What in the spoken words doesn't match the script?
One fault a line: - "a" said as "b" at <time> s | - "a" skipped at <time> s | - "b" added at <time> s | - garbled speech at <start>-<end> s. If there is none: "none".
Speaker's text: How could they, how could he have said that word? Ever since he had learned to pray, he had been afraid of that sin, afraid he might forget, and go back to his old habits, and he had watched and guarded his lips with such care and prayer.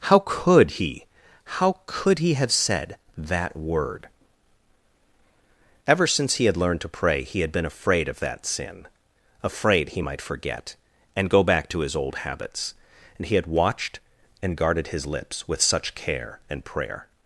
- "they" said as "he" at 0.7 s